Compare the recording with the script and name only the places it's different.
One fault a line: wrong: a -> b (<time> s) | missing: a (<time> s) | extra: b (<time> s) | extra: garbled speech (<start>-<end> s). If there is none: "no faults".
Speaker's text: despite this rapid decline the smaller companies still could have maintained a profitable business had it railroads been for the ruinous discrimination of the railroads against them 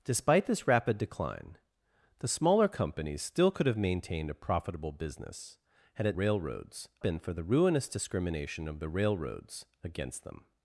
no faults